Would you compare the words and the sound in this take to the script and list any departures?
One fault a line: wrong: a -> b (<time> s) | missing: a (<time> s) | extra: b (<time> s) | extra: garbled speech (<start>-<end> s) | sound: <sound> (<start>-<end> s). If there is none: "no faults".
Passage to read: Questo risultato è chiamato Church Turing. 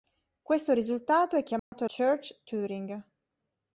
sound: dropout (1.6-1.7 s)